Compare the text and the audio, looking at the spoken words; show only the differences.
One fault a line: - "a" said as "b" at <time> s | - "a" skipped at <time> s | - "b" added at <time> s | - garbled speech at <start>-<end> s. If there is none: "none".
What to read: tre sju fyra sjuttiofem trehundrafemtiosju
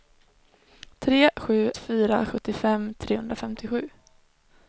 none